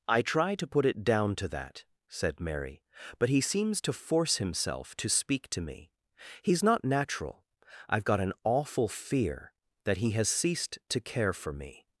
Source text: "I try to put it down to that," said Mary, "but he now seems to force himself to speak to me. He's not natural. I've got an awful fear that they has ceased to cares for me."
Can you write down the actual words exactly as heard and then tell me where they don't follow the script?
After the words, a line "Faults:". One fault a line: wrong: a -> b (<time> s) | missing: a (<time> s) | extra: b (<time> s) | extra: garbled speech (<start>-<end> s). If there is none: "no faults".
"I try to put it down to that," said Mary, "but he seems to force himself to speak to me. He's not natural. I've got an awful fear that he has ceased to care for me."
Faults:
missing: now (3.4 s)
wrong: they -> he (10.0 s)
wrong: cares -> care (11.0 s)